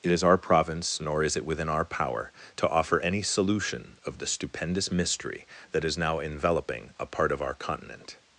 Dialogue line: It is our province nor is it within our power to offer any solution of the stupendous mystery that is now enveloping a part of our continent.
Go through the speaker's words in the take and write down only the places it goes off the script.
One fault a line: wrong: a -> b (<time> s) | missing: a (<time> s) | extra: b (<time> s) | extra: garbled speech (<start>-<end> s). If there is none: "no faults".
no faults